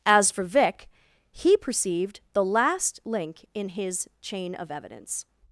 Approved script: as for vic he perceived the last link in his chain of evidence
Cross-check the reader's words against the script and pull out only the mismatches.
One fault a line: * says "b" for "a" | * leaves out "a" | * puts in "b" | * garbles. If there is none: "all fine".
all fine